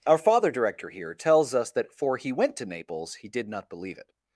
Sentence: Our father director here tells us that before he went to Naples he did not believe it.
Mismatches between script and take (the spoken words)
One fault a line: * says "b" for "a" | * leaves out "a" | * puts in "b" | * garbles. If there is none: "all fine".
* says "for" for "before"